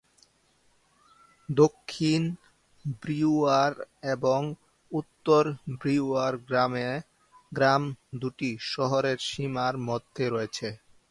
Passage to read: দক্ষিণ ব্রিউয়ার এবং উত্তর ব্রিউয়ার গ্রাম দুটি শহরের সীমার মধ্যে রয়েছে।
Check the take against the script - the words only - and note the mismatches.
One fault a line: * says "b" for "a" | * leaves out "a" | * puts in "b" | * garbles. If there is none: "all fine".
all fine